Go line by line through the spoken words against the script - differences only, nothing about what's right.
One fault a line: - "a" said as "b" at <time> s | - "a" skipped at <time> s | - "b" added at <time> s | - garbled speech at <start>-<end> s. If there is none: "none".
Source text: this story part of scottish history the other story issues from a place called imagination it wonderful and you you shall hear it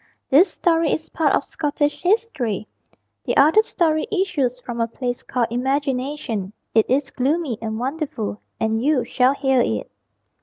- "is" added at 0.9 s
- "is gloomy and" added at 6.9 s
- "you" skipped at 9.1 s